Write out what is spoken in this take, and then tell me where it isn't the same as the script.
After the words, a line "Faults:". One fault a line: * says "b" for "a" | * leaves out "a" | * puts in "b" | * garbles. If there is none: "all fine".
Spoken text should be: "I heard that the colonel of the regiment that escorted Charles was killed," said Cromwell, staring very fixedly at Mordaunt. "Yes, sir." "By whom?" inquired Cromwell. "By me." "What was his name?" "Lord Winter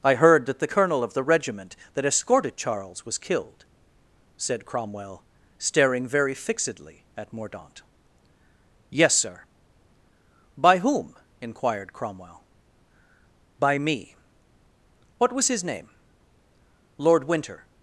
"I heard that the colonel of the regiment that escorted Charles was killed," said Cromwell, staring very fixedly at Mordaunt. "Yes, sir." "By whom?" inquired Cromwell. "By me." "What was his name?" "Lord Winter
Faults:
all fine